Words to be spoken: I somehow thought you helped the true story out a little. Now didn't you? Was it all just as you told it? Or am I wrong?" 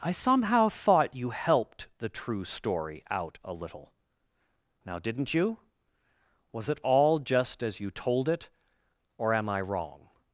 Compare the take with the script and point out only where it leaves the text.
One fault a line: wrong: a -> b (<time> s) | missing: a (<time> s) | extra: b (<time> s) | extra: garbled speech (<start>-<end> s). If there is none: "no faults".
no faults